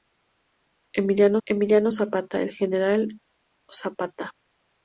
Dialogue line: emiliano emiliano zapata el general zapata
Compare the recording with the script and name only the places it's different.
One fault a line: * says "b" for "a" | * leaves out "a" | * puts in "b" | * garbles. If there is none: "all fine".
all fine